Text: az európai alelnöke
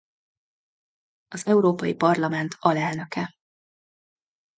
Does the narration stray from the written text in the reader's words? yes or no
yes